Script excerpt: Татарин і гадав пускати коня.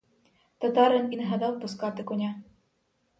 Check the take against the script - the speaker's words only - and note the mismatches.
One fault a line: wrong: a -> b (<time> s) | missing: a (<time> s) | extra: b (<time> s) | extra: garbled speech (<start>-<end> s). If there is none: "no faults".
extra: не (1.2 s)